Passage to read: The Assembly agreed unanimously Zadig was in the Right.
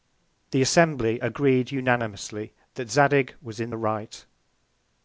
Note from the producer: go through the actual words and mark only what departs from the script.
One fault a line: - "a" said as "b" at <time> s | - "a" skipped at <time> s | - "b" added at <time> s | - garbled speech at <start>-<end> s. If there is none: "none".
- "that" added at 2.8 s